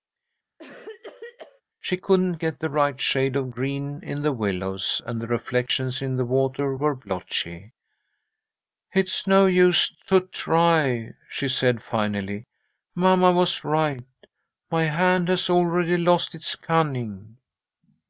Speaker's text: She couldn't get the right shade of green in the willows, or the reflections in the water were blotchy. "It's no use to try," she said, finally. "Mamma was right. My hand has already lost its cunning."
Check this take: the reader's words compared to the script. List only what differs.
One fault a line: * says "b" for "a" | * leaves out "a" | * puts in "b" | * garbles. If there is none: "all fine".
* says "and" for "or"